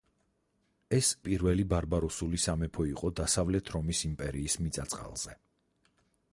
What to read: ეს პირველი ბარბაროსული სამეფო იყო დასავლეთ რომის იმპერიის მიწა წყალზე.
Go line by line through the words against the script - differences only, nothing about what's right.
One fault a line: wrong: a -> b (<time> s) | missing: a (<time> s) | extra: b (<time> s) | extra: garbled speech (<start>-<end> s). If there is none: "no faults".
no faults